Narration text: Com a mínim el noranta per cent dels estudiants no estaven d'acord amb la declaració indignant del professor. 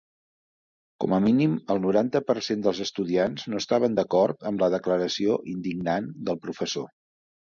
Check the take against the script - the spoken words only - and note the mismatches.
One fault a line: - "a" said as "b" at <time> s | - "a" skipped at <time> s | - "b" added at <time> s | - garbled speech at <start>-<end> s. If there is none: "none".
none